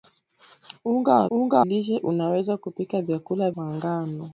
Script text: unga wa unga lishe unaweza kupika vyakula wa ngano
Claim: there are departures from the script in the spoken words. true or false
false